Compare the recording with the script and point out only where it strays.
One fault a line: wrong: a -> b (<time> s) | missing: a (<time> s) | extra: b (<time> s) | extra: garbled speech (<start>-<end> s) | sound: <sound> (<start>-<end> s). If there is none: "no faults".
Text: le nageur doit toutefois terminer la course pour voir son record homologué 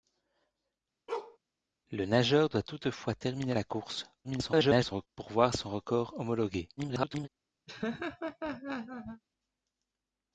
sound: bark (1.1-1.4 s)
extra: garbled speech (4.2-5.1 s)
extra: garbled speech (6.8-7.3 s)
sound: laugh (7.7-9.2 s)